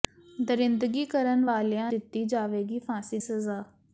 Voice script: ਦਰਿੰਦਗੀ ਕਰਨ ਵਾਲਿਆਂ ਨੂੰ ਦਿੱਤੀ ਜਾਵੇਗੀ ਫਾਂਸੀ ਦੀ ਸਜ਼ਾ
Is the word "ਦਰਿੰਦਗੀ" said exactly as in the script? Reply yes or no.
yes